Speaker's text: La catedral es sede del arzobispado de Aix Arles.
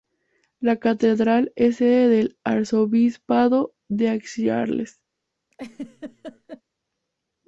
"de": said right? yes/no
yes